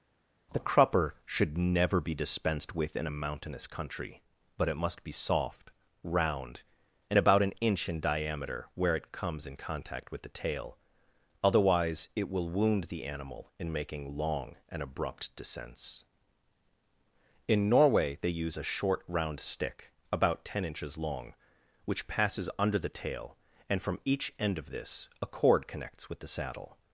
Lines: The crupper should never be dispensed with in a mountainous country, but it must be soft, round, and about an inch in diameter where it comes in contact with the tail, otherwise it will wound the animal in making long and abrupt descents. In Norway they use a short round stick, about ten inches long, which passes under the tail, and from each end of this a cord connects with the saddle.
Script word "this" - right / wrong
right